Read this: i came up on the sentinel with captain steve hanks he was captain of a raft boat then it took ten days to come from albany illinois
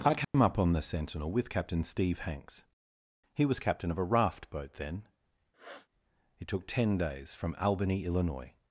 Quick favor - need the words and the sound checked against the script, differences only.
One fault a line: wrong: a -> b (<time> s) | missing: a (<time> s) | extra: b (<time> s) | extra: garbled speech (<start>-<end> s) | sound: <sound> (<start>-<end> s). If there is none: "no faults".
sound: dropout (0.2-0.3 s)
sound: sniff (5.5-5.9 s)
missing: to come (7.3 s)